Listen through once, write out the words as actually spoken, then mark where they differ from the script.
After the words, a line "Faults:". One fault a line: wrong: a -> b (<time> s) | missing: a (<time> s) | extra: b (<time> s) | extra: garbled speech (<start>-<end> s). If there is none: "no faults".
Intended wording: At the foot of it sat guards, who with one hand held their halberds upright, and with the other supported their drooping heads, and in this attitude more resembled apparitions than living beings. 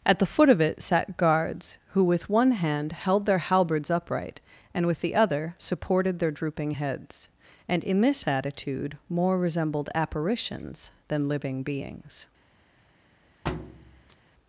At the foot of it sat guards, who with one hand held their halberds upright, and with the other supported their drooping heads, and in this attitude more resembled apparitions than living beings.
Faults:
no faults